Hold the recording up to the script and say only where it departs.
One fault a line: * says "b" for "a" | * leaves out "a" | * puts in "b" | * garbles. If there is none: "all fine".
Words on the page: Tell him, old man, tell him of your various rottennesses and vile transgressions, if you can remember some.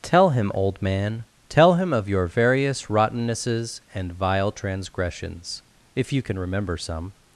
all fine